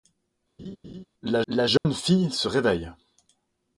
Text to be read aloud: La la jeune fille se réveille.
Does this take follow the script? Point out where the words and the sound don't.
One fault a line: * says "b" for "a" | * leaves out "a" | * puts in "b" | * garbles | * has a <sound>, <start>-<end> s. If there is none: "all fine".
* has a laugh, 0.6-1.1 s
* has a dropout, 1.8-1.9 s